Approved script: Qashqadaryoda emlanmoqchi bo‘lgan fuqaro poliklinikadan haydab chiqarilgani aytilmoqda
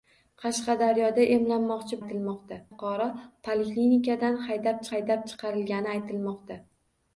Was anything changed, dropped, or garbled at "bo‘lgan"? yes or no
yes